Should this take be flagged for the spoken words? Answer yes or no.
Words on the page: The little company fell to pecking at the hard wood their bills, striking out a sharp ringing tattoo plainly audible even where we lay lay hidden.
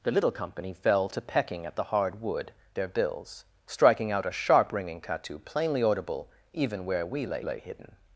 no